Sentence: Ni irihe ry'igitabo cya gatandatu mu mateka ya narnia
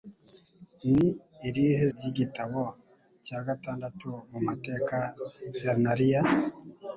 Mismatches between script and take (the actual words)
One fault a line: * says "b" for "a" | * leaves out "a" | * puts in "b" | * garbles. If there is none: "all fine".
all fine